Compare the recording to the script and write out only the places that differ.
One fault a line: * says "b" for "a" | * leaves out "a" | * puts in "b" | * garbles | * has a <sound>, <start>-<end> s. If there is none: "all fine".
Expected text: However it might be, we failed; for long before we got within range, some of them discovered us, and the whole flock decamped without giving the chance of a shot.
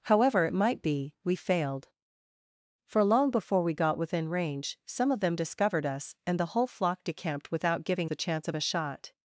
all fine